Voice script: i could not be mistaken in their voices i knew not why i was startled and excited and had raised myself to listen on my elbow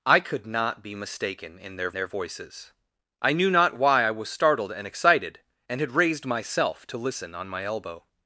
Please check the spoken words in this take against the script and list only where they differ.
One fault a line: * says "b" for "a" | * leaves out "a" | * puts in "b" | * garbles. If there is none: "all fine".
* puts in "their"